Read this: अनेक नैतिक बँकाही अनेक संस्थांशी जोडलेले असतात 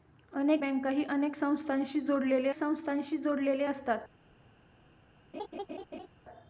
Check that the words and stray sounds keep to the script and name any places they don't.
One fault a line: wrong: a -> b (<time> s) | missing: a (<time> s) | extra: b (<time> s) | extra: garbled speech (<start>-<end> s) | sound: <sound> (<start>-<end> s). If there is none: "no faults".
missing: नैतिक (0.6 s)
extra: संस्थांशी जोडलेले (2.5 s)
sound: laugh (5.3-6.1 s)